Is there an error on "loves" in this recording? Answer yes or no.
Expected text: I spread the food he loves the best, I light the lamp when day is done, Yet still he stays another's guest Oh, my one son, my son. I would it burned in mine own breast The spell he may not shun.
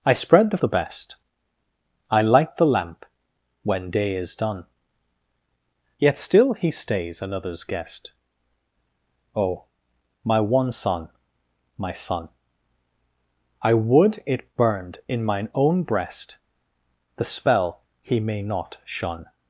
yes